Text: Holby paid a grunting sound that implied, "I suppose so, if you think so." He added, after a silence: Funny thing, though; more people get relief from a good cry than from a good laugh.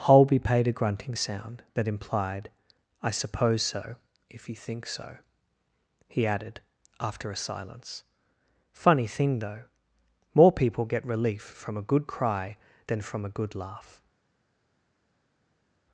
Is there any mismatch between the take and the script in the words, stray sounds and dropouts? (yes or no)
no